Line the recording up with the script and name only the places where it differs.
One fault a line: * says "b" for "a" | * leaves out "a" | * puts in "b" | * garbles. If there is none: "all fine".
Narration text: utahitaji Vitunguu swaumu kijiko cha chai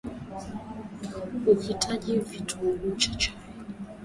* leaves out "swaumu kijiko"